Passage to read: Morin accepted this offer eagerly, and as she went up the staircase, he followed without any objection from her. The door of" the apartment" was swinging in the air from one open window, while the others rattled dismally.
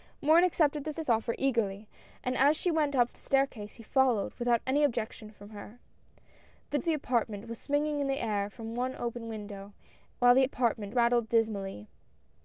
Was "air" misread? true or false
false